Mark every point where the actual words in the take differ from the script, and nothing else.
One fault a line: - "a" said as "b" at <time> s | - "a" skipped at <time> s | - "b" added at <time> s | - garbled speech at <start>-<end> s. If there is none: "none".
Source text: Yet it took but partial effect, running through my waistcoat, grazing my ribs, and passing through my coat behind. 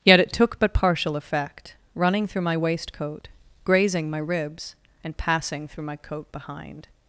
none